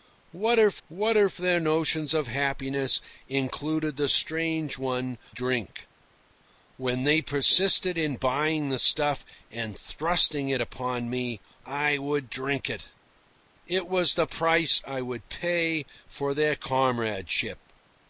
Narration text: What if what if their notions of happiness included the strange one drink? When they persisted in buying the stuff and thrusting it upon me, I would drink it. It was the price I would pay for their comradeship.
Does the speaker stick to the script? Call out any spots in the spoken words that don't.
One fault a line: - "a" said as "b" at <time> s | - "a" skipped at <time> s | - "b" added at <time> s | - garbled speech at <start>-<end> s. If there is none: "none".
none